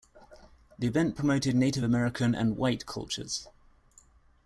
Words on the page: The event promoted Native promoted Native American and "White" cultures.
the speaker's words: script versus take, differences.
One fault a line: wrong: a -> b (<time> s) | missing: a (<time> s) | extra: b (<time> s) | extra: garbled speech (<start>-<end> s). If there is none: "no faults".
missing: promoted Native (1.9 s)